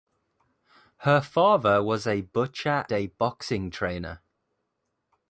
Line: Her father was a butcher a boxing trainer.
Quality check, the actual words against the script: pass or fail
pass